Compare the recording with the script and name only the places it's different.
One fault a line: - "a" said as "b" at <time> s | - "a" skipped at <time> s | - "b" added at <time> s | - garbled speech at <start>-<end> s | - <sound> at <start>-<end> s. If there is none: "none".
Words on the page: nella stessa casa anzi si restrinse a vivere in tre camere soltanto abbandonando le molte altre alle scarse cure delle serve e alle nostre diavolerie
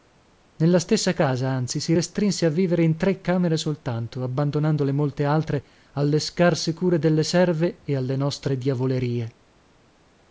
none